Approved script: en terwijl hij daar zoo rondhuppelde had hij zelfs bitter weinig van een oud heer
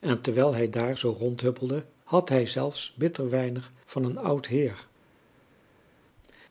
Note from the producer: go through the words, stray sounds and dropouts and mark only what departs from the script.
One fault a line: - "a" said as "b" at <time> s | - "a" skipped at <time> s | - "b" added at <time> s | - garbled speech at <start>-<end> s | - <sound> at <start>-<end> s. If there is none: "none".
none